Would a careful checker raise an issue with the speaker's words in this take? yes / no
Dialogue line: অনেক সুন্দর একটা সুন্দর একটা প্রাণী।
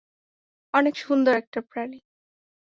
yes